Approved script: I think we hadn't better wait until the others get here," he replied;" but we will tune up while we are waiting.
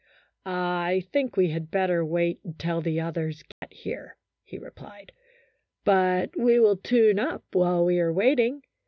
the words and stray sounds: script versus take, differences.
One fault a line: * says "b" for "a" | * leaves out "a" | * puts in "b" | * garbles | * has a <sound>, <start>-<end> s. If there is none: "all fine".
* says "had" for "hadn't"
* has a dropout, 3.5-3.6 s